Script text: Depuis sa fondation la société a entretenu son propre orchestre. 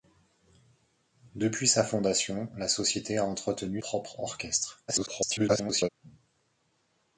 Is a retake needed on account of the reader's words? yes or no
yes